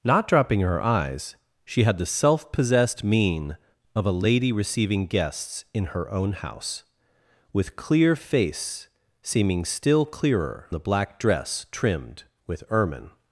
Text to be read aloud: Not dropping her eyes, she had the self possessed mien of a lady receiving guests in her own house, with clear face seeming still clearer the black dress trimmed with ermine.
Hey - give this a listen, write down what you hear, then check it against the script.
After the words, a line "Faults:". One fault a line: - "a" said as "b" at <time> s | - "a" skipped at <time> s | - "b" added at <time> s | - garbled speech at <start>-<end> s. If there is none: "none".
Not dropping her eyes, she had the self possessed mien of a lady receiving guests in her own house, with clear face seeming still clearer the black dress trimmed with ermine.
Faults:
none